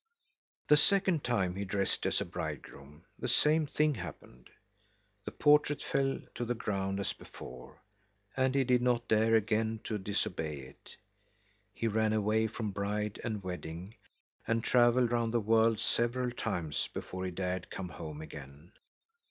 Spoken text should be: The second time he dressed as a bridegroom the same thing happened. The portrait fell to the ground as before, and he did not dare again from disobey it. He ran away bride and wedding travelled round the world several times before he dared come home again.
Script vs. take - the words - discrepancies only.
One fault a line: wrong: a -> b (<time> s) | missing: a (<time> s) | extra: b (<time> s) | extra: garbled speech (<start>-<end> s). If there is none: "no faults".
wrong: from -> to (9.8 s)
extra: from (12.5 s)
extra: and (14.5 s)